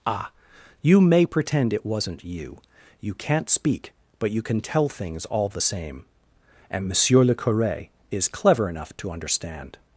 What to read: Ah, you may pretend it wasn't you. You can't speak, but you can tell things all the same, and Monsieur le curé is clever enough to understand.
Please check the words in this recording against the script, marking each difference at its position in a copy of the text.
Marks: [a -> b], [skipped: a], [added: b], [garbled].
Ah, you may pretend it wasn't you. You can't speak, but you can tell things all the same, and Monsieur le curé is clever enough to understand.